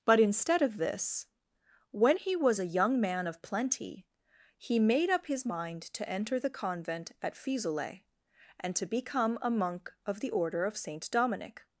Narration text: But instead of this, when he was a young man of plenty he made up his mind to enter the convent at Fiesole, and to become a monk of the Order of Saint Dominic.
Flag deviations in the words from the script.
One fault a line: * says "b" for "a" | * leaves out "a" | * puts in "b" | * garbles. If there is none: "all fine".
all fine